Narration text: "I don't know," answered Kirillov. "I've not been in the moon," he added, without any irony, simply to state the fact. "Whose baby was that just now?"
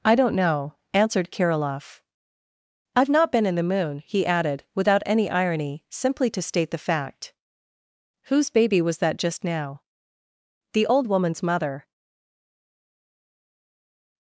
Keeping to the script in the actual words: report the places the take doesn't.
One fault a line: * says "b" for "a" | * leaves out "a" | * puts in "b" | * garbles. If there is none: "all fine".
* puts in "The old woman's mother"